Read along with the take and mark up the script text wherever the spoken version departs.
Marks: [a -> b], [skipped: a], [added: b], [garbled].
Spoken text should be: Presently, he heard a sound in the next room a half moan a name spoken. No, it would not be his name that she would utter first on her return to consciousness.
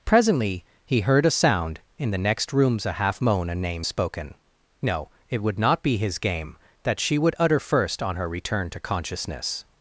Presently, he heard a sound in the next [room -> rooms] a half moan a name spoken. No, it would not be his [name -> game] that she would utter first on her return to consciousness.